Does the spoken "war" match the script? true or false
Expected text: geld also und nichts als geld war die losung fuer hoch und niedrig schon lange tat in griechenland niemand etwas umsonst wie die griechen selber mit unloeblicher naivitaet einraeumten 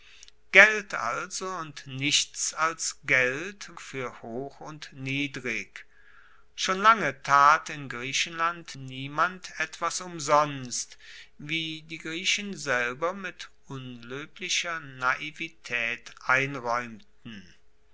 false